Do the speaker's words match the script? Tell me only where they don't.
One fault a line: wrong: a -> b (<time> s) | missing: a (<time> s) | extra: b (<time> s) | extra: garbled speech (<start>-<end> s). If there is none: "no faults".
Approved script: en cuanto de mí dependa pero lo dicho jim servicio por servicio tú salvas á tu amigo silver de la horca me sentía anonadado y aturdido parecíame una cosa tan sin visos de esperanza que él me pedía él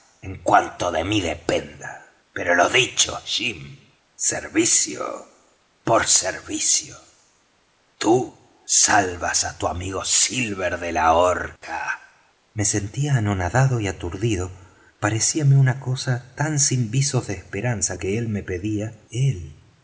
no faults